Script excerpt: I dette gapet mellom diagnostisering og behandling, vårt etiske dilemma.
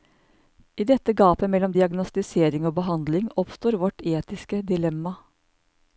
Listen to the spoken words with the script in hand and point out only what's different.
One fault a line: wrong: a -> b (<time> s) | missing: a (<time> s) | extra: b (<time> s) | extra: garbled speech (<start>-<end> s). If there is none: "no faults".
extra: oppstår (3.4 s)